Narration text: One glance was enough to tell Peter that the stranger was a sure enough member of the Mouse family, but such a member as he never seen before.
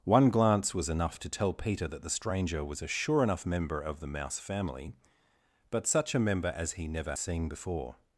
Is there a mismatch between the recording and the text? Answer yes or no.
no